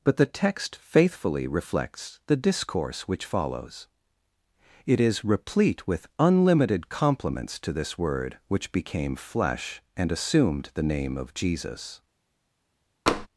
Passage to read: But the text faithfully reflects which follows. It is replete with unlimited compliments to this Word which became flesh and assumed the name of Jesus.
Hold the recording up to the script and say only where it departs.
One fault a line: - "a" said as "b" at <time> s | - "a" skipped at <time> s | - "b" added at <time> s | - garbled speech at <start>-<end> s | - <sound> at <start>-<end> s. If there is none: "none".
- "the discourse" added at 2.2 s
- tap at 13.1-13.3 s